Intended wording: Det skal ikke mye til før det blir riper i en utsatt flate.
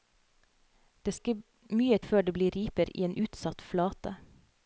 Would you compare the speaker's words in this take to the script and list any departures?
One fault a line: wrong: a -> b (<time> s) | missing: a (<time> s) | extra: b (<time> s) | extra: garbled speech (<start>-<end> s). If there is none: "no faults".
missing: skal (1.1 s)
missing: til (2.0 s)